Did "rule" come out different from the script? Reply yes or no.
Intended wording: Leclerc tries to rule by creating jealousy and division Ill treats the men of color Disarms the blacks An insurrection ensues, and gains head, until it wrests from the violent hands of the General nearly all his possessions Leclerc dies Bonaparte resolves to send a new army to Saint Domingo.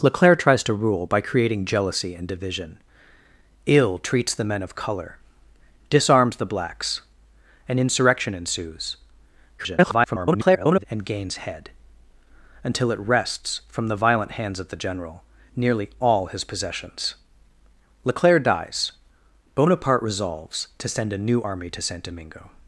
no